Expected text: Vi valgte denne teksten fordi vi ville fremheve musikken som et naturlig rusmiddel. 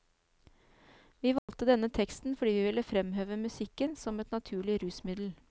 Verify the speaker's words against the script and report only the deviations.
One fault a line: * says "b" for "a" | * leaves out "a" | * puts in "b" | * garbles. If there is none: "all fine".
all fine